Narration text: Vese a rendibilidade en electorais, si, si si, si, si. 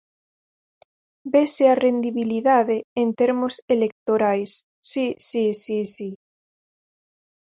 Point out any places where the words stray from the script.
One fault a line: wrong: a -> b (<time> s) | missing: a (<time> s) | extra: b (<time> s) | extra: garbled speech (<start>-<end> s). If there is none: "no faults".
extra: termos (3.2 s)
missing: si (6.1 s)